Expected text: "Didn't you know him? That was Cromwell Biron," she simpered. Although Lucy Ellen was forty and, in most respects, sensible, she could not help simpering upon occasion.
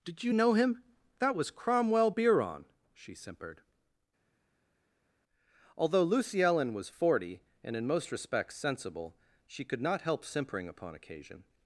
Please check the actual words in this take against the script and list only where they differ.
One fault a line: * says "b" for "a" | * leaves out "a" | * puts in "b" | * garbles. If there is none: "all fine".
* says "Did" for "Didn't"